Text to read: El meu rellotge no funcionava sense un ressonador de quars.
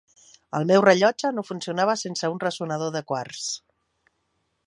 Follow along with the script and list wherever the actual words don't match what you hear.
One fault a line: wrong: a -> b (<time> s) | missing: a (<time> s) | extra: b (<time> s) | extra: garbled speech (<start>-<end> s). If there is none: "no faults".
no faults